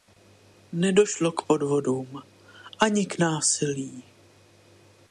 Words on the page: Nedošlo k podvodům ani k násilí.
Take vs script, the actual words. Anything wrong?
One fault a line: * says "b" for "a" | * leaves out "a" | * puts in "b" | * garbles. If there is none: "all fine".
all fine